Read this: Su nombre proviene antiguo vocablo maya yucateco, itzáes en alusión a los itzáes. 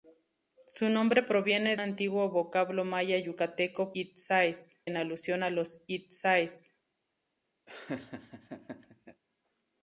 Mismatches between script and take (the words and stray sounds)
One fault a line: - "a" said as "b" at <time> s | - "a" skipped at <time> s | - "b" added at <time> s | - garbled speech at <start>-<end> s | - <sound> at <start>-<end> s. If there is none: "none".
- laugh at 7.7-9.2 s